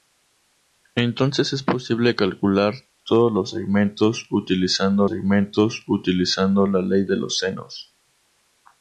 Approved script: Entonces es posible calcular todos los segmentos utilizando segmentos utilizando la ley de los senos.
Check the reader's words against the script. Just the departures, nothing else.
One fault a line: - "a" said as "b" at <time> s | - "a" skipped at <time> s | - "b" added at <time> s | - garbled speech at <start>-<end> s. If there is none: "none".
none